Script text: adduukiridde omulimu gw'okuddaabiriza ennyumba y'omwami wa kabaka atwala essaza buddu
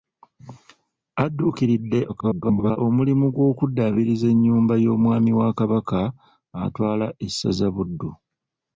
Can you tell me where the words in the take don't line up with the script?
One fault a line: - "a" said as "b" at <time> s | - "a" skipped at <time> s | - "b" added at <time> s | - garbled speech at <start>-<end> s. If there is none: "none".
- garbled speech at 2.1-2.8 s